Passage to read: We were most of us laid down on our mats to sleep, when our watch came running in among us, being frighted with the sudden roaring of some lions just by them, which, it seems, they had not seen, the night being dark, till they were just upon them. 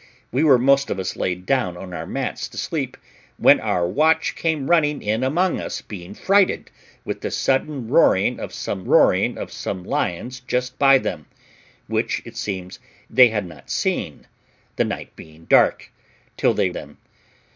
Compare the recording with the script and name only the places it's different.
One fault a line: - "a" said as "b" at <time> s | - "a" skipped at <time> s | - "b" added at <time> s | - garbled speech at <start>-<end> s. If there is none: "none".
- "roaring of some" added at 8.8 s
- "were just upon" skipped at 16.7 s